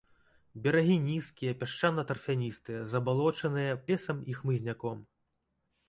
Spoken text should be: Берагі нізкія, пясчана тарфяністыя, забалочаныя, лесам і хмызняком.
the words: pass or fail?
pass